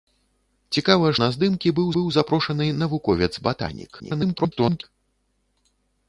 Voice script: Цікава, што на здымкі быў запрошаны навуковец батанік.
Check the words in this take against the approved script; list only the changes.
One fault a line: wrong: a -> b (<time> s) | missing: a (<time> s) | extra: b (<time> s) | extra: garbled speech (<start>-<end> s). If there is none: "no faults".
missing: што (1.1 s)
extra: быў (1.9 s)
extra: garbled speech (4.0-4.8 s)